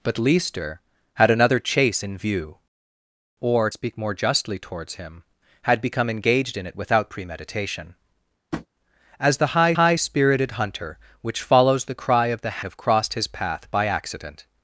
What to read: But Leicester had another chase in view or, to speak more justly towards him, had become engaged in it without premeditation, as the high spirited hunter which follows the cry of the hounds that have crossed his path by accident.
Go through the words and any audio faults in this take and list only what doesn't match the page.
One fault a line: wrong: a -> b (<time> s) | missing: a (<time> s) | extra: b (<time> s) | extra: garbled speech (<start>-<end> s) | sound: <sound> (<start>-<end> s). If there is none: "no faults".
missing: to (3.7 s)
sound: tap (8.5-8.7 s)
extra: high (9.8 s)
missing: hounds that (12.6 s)